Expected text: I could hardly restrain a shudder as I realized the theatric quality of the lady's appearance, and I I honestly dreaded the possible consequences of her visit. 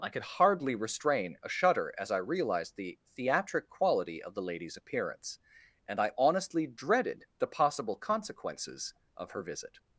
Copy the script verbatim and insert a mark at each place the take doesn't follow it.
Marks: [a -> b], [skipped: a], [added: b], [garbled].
I could hardly restrain a shudder as I realized the theatric quality of the lady's appearance, and I [skipped: I] honestly dreaded the possible consequences of her visit.